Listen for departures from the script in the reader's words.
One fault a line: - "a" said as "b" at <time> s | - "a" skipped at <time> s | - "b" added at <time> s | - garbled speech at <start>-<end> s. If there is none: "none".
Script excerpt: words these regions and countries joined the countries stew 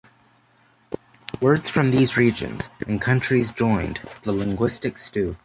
- "from" added at 1.7 s
- "countries" said as "linguistic" at 4.3 s